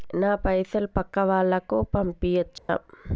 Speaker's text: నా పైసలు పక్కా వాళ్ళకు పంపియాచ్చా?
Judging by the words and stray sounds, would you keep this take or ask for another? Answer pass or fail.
fail